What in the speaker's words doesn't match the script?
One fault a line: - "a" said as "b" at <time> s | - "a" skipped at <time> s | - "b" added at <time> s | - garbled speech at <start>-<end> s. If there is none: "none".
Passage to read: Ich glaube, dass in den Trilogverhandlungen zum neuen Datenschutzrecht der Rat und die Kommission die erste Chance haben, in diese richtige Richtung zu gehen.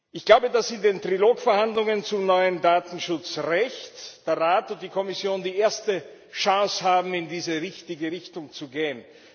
none